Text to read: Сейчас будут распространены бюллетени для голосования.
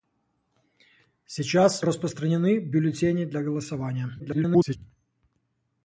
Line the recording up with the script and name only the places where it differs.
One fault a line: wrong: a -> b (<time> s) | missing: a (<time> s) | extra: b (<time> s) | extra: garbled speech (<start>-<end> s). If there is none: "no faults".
missing: будут (1.9 s)
extra: garbled speech (4.2-4.8 s)